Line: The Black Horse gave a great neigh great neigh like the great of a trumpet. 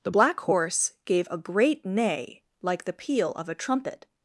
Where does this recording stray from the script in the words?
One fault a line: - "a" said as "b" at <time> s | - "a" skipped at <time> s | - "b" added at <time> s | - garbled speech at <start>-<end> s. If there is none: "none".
- "great neigh" skipped at 2.4 s
- "great" said as "peal" at 2.9 s